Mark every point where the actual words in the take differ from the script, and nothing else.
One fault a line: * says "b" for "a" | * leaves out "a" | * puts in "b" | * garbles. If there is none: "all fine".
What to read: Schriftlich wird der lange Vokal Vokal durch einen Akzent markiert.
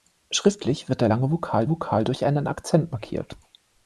all fine